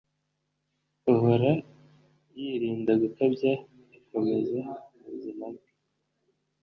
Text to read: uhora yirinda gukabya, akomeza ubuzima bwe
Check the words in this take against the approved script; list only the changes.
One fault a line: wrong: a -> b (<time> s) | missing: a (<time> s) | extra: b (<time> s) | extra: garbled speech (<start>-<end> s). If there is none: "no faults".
no faults